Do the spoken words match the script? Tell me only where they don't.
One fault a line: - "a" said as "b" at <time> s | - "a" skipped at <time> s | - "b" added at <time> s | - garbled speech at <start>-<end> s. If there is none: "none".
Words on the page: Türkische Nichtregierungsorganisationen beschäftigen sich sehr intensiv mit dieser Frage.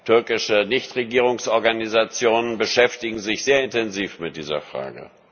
none